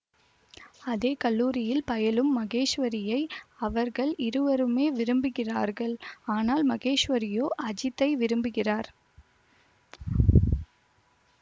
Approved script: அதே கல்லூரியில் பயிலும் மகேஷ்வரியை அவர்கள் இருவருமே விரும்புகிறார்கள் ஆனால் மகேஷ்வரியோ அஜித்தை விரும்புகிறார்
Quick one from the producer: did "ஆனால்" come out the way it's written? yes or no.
yes